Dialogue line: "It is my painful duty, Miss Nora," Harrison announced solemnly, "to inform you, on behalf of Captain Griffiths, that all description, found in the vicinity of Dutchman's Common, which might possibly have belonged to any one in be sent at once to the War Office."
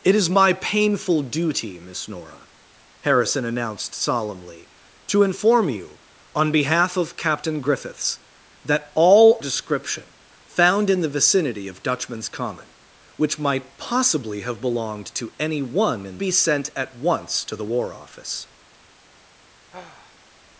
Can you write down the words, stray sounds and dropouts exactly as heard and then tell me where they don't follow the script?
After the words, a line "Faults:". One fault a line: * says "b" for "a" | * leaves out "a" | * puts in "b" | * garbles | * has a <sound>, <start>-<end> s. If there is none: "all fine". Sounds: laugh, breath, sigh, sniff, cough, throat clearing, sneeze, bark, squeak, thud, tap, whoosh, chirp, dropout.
"It is my painful duty, Miss Nora," Harrison announced solemnly, "to inform you, on behalf of Captain Griffiths, that all description, found in the vicinity of Dutchman's Common, which might possibly have belonged to any one in be sent at once to the War Office."
Faults:
* has a sigh, 19.7-20.3 s